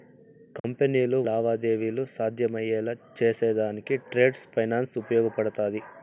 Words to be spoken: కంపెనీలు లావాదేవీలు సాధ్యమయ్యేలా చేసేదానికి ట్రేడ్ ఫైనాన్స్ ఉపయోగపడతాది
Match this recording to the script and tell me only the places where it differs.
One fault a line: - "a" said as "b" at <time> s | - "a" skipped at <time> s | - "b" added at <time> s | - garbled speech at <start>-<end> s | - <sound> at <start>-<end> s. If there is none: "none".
- dropout at 0.6-0.6 s